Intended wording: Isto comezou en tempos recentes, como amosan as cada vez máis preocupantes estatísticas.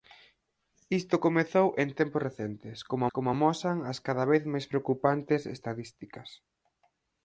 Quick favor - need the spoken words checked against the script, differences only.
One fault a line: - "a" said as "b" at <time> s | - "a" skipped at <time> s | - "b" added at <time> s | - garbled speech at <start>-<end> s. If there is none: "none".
- "como" added at 3.1 s